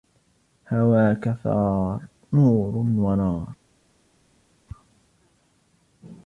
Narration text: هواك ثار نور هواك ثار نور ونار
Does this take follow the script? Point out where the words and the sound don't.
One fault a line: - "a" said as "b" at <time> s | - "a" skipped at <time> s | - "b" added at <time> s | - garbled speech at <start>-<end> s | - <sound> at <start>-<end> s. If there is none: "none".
- "هواك ثار نور" skipped at 2.8 s